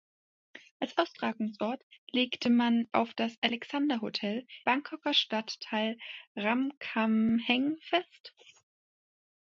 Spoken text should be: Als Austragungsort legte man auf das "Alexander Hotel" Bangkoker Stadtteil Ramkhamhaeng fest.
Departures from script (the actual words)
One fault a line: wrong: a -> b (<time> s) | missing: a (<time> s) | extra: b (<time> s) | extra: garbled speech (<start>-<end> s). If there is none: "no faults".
no faults